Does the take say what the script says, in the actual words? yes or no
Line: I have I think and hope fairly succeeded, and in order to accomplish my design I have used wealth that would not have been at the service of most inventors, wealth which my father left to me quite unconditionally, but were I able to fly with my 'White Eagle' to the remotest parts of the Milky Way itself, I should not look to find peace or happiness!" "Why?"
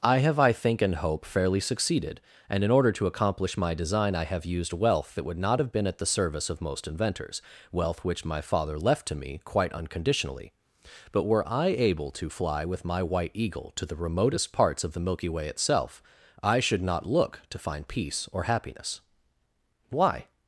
yes